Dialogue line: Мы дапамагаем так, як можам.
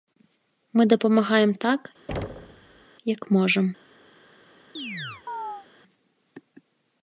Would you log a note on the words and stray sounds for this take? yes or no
yes